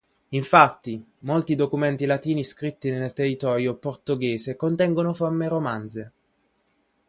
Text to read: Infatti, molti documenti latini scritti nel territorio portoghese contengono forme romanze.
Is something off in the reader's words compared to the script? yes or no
no